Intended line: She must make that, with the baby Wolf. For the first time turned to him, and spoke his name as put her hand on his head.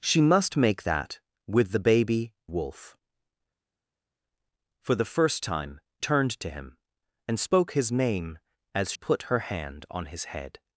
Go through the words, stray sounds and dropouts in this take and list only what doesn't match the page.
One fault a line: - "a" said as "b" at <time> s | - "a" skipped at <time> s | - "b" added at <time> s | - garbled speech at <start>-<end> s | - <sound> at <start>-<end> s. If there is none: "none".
none